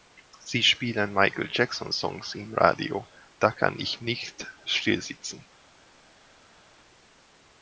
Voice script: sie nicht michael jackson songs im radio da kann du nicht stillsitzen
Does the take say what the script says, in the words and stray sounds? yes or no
no